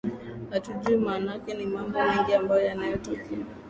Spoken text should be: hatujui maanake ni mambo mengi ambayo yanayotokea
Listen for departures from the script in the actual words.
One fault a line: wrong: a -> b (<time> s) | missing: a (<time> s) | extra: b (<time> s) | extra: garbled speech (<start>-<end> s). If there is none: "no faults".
no faults